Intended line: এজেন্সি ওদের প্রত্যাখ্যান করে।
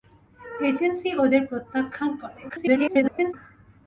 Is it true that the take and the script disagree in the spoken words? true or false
true